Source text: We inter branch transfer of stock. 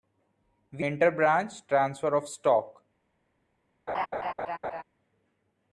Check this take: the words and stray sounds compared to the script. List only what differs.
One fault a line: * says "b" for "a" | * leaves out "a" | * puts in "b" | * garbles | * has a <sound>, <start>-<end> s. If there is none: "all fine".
* has a laugh, 3.9-4.8 s